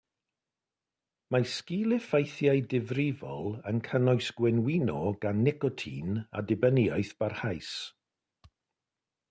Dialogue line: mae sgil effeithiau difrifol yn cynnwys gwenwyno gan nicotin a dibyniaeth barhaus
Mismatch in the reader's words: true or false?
false